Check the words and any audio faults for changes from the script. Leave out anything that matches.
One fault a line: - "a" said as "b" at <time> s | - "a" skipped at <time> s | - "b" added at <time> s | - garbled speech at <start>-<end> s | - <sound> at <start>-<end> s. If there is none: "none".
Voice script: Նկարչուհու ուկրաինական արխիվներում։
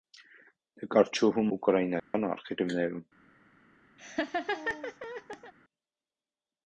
- dropout at 2.0-2.1 s
- laugh at 4.0-5.5 s